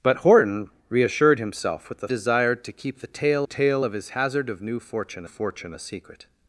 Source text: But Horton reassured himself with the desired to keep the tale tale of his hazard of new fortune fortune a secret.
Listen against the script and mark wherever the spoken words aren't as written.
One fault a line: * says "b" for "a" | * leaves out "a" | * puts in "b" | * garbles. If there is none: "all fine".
all fine